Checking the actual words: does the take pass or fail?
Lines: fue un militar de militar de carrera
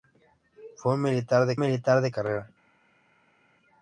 pass